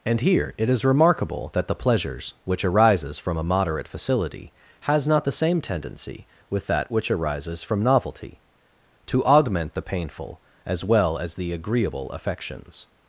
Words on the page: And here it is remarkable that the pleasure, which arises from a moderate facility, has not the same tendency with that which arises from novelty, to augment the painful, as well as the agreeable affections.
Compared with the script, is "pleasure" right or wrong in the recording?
wrong